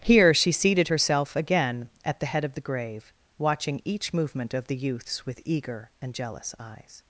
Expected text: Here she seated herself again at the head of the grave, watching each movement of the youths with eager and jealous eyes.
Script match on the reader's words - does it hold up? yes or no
yes